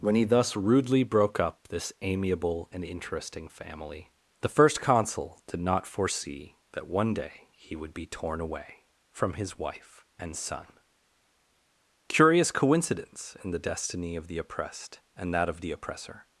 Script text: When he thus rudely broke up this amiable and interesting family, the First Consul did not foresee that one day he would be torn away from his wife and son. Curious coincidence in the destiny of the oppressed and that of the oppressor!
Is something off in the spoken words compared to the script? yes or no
no